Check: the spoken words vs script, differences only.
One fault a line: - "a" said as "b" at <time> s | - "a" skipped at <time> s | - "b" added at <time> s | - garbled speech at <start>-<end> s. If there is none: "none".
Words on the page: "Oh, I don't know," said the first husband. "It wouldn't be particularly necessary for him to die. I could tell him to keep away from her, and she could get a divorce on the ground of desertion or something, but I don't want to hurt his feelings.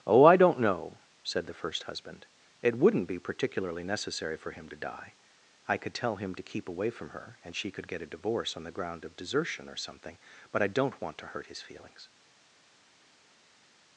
none